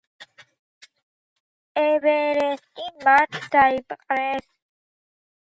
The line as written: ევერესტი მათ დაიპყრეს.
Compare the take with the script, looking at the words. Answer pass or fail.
pass